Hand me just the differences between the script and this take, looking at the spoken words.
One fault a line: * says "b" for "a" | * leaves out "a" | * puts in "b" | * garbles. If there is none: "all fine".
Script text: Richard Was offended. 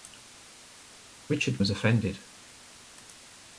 all fine